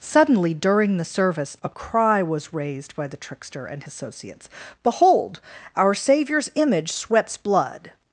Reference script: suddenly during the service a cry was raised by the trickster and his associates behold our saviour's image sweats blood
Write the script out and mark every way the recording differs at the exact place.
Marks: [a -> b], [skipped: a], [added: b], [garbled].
suddenly during the service a cry was raised by the trickster and [skipped: his] associates behold our saviour's image sweats blood